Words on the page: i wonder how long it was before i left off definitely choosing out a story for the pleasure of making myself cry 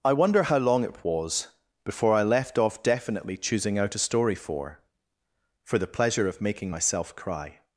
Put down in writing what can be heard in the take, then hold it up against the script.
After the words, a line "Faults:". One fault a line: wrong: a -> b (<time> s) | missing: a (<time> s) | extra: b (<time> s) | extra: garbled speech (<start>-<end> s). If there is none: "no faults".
i wonder how long it was before i left off definitely choosing out a story for for the pleasure of making myself cry
Faults:
extra: for (5.6 s)